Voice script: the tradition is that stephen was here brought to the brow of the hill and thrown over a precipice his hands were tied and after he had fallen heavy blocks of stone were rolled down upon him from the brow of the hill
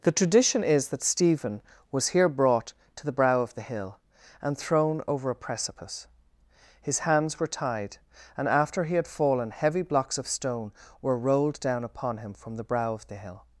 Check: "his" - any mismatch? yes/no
no